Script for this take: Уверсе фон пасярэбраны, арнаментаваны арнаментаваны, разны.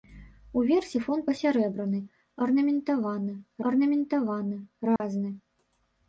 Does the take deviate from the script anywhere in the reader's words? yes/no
no